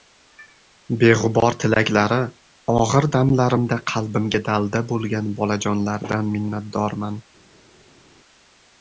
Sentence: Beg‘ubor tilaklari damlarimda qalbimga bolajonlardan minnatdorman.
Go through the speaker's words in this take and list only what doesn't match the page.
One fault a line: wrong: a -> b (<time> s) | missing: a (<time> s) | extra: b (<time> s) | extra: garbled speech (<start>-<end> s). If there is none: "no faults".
extra: og‘ir (2.8 s)
extra: dalda bo‘lgan (4.5 s)